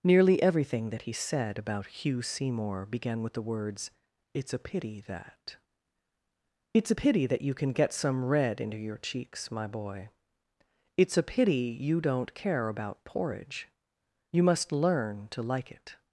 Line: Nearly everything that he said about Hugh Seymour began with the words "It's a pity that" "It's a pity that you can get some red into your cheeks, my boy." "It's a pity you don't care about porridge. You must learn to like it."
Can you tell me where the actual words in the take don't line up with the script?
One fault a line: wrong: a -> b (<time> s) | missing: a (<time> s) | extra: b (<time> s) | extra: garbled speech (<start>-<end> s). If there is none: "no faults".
no faults